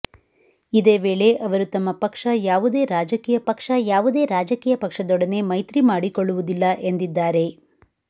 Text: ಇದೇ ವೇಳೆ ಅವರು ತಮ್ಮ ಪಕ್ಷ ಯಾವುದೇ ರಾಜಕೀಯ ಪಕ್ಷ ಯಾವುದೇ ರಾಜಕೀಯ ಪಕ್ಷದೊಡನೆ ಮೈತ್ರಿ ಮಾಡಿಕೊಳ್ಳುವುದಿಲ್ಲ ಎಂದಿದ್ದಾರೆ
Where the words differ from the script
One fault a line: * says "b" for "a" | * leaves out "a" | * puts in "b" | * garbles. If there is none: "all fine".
all fine